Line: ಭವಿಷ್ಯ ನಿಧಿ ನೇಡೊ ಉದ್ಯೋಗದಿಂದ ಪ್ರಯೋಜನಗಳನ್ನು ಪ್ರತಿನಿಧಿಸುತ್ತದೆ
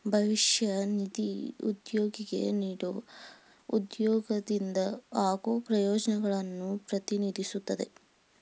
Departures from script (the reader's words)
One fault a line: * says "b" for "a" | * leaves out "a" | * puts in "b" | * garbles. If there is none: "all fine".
* puts in "ಉದ್ಯೋಗಿಗೆ"
* puts in "ಆಗೋ"